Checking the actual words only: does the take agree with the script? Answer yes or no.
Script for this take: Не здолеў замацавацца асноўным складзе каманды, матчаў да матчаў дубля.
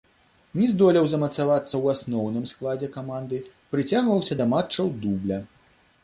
no